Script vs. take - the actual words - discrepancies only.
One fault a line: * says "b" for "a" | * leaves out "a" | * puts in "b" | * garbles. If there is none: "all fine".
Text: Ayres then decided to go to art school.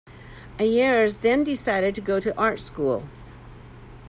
all fine